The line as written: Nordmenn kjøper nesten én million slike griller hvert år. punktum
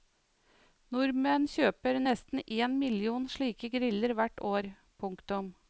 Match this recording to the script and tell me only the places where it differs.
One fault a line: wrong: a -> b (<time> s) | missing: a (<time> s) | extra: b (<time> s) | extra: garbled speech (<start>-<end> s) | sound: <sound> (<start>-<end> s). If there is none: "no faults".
no faults